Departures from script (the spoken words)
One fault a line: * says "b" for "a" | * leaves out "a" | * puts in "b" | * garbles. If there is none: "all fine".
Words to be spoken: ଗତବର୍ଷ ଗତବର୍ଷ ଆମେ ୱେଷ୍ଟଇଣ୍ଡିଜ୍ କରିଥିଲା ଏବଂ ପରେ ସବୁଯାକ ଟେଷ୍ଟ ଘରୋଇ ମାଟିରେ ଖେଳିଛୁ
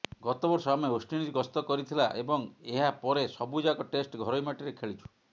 * leaves out "ଗତବର୍ଷ"
* puts in "ଗସ୍ତ"
* puts in "ଏହା"